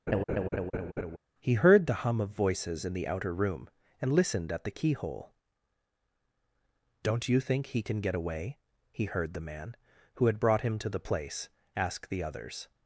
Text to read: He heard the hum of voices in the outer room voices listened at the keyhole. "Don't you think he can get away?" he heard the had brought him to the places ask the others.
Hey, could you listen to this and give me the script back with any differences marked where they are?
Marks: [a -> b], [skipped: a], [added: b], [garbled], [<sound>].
[laugh] He heard the hum of voices in the outer room [voices -> and] listened at the keyhole. "Don't you think he can get away?" he heard the [added: man who] had brought him to the [places -> place] ask the others.